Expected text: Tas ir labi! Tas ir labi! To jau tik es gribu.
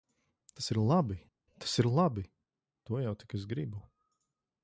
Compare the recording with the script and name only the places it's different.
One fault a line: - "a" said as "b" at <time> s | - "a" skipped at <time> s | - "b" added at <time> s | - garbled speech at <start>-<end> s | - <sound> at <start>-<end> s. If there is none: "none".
none